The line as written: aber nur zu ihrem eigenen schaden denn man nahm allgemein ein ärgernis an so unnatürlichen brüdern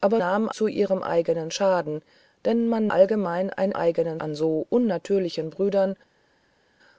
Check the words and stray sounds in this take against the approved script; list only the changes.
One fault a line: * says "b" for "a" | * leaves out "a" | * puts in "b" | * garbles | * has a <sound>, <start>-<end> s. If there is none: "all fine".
* says "nahm" for "nur"
* leaves out "nahm"
* says "eigenen" for "ärgernis"